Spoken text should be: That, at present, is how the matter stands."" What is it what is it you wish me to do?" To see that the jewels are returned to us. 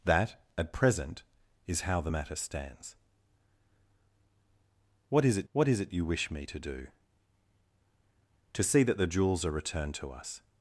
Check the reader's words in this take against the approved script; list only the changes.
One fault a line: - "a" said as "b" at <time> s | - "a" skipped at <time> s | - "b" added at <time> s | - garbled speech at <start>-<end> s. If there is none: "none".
none